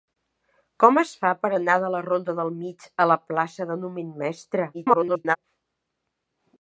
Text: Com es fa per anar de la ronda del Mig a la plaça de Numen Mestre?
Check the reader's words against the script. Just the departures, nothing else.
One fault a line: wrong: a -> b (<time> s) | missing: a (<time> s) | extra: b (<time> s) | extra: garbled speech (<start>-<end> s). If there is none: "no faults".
extra: garbled speech (4.7-5.4 s)